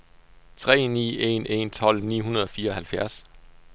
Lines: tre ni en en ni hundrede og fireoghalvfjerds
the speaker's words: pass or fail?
fail